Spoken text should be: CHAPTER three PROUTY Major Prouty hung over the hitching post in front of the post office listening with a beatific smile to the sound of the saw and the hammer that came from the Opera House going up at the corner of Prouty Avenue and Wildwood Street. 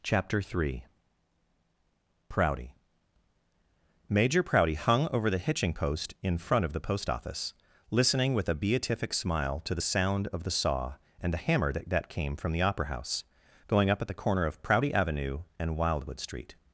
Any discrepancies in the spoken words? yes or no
yes